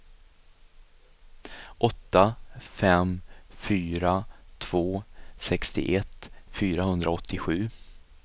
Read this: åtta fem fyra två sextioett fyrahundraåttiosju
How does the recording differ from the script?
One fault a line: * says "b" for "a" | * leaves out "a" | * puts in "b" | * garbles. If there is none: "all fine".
all fine